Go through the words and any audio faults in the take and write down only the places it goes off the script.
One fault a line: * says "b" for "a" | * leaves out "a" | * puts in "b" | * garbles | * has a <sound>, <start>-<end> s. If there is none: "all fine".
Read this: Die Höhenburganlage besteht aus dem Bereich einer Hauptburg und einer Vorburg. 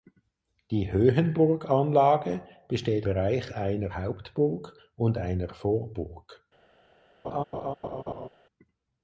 * leaves out "aus dem"
* has a laugh, 7.2-8.3 s